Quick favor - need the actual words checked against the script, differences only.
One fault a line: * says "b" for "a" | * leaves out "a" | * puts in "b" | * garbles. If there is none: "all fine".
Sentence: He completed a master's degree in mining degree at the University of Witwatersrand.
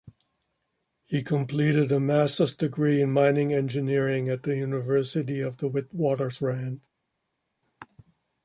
* says "engineering" for "degree"
* puts in "the"